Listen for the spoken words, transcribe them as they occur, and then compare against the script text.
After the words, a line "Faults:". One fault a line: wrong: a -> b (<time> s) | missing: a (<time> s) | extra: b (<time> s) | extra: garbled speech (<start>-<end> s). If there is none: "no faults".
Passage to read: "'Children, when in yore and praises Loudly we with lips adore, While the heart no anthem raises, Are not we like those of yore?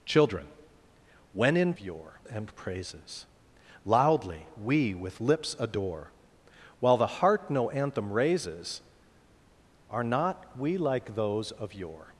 "'Children, when in yore and praises Loudly we with lips adore, While the heart no anthem raises, Are not we like those of yore?
Faults:
no faults